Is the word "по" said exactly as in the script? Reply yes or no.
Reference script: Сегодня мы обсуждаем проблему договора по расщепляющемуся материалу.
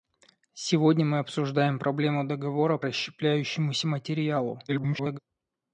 no